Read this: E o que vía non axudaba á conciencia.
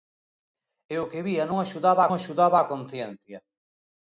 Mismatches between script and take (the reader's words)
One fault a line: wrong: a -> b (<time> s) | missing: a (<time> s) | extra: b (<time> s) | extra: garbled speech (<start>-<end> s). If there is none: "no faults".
extra: axudaba (2.1 s)